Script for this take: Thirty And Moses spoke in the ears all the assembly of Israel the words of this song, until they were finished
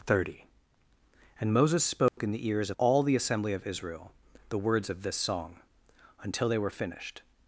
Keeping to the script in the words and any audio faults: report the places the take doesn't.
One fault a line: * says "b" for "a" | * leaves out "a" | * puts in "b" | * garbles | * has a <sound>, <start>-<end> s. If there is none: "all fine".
* has a dropout, 2.1-2.2 s